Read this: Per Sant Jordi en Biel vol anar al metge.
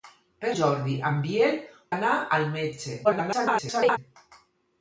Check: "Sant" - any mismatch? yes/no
yes